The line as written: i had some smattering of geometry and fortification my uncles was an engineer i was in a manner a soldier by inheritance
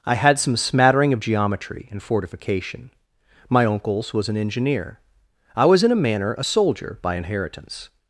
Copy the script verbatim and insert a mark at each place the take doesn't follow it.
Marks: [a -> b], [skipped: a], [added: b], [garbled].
i had some smattering of geometry and fortification my uncles was an engineer i was in a manner a soldier by inheritance